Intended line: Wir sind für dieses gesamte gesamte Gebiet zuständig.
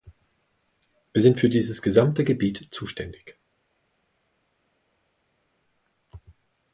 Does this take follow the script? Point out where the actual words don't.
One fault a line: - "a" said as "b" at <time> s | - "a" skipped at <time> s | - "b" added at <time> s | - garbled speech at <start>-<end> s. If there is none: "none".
- "gesamte" skipped at 2.2 s